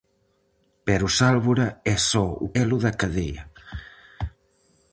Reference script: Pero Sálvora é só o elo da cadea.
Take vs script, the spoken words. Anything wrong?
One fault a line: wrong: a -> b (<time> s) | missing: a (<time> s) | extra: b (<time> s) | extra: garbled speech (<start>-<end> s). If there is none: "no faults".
no faults